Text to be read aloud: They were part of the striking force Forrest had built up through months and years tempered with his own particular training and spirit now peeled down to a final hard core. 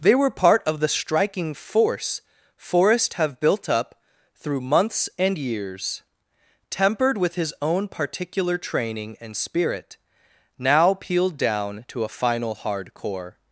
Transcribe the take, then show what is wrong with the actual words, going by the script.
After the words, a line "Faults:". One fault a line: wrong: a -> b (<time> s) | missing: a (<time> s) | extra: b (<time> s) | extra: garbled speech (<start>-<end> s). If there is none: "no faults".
They were part of the striking force Forrest have built up through months and years tempered with his own particular training and spirit now peeled down to a final hard core.
Faults:
wrong: had -> have (3.1 s)